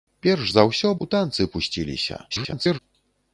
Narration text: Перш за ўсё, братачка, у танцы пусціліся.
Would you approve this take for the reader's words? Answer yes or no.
no